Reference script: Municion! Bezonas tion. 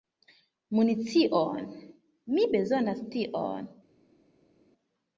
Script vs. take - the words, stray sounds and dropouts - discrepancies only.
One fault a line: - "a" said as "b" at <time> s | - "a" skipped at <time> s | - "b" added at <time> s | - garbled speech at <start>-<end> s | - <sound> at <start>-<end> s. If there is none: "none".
- "Mi" added at 2.3 s